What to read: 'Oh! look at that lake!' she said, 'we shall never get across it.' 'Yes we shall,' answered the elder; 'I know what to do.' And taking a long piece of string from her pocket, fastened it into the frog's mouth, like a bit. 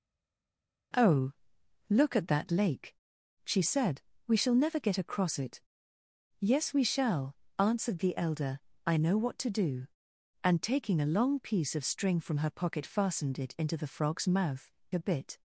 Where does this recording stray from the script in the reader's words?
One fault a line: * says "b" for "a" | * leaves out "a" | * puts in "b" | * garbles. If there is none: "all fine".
* leaves out "like"